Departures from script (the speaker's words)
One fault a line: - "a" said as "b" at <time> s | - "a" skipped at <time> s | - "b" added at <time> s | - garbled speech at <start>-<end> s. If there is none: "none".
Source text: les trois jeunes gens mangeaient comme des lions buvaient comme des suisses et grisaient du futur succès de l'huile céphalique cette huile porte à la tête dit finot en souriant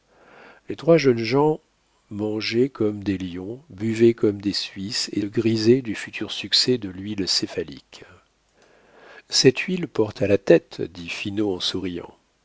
none